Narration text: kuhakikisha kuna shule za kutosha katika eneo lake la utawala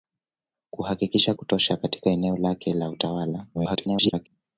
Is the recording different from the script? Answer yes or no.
yes